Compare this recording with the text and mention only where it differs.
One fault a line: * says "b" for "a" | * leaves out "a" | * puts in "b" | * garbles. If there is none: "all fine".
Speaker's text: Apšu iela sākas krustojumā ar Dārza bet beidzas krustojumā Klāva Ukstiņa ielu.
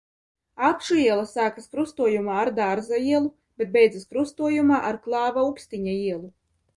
* puts in "ielu"
* puts in "ar"